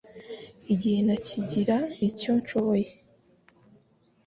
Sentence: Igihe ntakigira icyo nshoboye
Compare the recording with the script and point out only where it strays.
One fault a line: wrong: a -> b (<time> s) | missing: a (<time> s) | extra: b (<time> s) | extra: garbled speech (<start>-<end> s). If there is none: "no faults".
no faults